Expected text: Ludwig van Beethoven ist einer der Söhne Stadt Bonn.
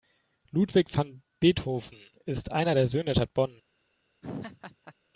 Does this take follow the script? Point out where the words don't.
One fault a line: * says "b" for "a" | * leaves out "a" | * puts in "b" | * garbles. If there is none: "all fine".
all fine